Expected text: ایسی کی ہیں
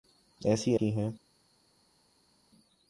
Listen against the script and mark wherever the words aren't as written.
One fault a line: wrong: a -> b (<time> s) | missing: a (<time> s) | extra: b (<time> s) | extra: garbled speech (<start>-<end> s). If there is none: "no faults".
no faults